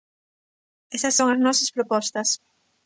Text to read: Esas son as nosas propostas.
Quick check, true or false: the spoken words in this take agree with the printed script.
true